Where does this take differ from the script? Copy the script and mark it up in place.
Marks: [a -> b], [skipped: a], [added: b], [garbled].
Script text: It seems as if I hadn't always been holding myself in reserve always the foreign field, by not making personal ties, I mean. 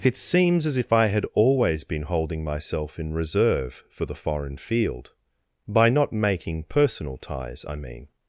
It seems as if I [hadn't -> had] always been holding myself in reserve [always -> for] the foreign field, by not making personal ties, I mean.